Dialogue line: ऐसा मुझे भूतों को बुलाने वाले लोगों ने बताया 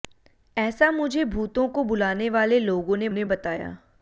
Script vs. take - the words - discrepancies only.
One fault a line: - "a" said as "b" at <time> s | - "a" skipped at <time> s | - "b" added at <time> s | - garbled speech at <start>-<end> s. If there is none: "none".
- "ने" added at 3.1 s